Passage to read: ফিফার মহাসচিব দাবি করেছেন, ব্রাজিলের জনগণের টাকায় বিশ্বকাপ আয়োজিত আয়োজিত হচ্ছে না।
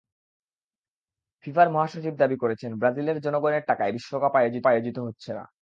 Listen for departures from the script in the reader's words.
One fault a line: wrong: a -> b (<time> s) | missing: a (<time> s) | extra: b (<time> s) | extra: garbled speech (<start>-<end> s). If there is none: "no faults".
no faults